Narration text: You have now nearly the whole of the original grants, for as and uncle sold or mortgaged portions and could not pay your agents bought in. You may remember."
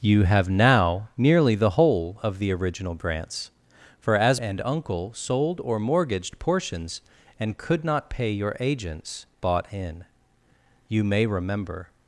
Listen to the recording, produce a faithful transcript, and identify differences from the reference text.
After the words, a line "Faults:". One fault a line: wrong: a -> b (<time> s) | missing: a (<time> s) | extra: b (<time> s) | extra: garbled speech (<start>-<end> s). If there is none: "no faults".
You have now nearly the whole of the original grants, for as and uncle sold or mortgaged portions and could not pay your agents bought in. You may remember."
Faults:
no faults